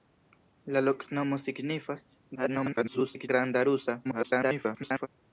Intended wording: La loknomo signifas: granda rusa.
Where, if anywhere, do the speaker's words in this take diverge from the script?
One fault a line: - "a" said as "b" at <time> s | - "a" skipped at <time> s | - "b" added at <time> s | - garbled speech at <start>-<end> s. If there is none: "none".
- garbled speech at 2.4-3.3 s
- garbled speech at 4.0-5.1 s